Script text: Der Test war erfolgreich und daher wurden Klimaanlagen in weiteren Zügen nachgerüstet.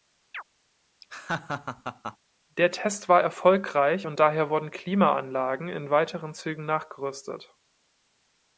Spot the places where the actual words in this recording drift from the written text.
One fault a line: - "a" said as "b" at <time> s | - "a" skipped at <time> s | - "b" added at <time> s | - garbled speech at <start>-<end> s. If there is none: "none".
none